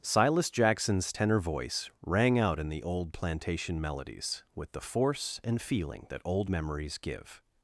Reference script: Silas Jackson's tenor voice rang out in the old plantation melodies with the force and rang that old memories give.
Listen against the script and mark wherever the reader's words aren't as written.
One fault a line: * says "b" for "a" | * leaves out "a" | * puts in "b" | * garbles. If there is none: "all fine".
* says "feeling" for "rang"